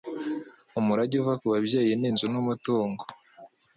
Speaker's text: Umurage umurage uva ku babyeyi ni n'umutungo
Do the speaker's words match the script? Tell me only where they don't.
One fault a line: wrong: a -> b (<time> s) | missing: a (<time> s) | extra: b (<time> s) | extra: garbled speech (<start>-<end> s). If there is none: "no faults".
missing: umurage (1.1 s)
extra: inzu (2.1 s)